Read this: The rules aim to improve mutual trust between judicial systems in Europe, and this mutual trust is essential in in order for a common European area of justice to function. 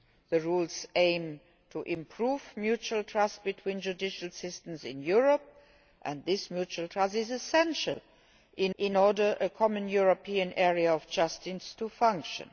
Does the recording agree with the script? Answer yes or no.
yes